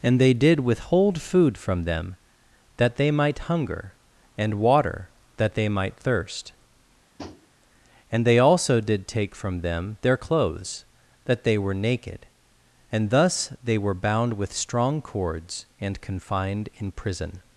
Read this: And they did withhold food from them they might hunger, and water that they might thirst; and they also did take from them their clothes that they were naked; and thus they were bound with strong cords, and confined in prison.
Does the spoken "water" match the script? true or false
true